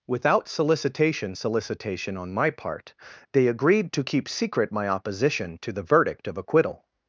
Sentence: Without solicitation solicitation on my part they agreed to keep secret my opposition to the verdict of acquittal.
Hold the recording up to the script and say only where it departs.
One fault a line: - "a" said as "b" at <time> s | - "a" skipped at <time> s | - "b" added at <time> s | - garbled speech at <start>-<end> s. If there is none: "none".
none